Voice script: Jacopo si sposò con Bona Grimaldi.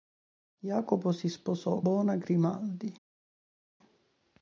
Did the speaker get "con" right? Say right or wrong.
wrong